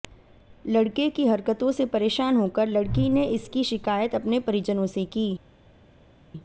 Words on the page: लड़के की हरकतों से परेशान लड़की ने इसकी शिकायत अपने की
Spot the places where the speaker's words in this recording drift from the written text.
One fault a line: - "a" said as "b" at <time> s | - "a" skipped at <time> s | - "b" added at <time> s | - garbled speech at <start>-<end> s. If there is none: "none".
- "होकर" added at 2.4 s
- "परिजनों से" added at 4.4 s